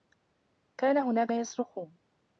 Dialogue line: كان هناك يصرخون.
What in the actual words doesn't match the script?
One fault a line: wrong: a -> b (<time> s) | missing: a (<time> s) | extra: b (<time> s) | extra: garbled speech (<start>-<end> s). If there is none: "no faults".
no faults